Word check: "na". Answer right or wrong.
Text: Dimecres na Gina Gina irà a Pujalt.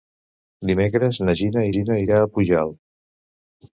right